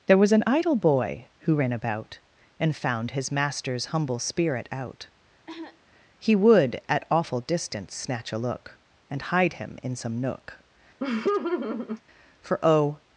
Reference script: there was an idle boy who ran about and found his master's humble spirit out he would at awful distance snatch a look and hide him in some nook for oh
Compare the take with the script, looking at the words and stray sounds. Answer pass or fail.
fail